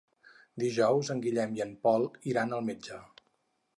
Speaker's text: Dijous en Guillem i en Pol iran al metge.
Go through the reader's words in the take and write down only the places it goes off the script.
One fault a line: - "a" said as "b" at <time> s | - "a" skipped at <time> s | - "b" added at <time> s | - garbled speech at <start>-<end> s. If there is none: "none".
none